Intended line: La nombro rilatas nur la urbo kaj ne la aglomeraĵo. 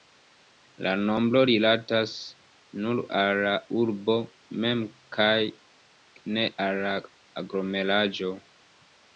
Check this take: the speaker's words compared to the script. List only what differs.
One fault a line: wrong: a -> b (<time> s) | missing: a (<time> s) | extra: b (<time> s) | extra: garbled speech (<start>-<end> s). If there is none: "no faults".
extra: al (3.2 s)
extra: mem (4.7 s)
extra: al (6.7 s)